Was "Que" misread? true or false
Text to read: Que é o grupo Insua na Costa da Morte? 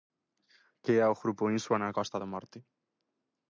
false